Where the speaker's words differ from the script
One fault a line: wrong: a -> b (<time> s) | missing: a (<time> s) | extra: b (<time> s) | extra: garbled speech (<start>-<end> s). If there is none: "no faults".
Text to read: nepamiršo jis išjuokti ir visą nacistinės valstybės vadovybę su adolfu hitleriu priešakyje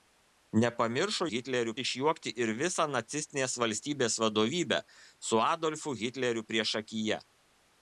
wrong: jis -> hitleriu (1.3 s)